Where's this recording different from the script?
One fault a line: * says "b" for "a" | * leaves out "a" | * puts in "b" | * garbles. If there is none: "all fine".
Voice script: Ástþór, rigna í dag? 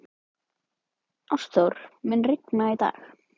* puts in "mun"